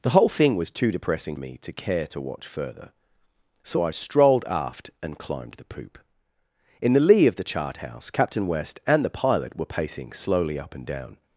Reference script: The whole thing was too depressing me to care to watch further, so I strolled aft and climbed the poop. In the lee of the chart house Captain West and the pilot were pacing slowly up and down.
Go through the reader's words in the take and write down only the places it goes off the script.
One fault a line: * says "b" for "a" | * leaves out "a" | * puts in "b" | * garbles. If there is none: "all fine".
all fine